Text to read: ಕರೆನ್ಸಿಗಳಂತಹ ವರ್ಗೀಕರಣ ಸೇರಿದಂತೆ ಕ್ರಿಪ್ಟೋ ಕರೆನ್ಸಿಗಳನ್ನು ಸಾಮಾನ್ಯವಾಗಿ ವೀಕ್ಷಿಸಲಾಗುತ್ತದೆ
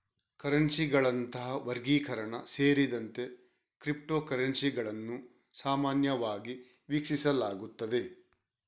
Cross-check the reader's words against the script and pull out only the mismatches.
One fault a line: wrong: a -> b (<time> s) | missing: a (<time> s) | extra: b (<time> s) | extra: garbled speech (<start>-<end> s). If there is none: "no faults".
no faults